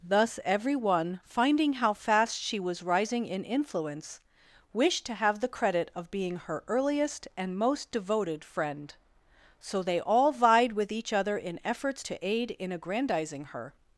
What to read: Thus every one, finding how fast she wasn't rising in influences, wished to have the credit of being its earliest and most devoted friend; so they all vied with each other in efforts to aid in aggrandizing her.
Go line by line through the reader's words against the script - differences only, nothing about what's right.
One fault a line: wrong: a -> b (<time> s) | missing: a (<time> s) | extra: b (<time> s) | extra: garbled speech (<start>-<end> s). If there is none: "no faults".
wrong: wasn't -> was (2.6 s)
wrong: influences -> influence (3.4 s)
wrong: its -> her (6.4 s)